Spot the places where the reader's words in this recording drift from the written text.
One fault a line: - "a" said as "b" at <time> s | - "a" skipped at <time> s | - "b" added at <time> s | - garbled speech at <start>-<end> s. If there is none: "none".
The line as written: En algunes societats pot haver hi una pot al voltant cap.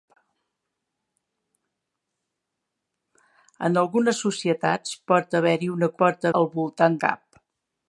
none